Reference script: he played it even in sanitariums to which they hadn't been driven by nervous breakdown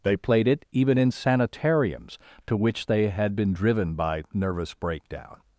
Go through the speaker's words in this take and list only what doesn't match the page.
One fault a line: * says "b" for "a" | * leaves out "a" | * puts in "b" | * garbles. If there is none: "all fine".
* says "they" for "he"
* says "had" for "hadn't"